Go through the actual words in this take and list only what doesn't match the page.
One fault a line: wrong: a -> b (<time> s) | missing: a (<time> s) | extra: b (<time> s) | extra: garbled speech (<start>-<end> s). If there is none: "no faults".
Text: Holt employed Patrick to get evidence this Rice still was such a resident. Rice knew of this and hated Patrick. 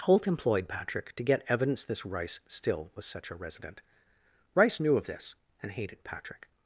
no faults